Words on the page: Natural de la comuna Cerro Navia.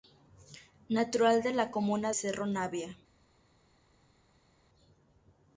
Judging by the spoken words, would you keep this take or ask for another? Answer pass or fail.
pass